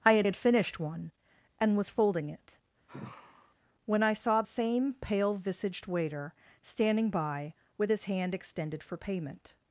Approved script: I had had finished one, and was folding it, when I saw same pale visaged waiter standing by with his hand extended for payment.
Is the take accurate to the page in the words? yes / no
yes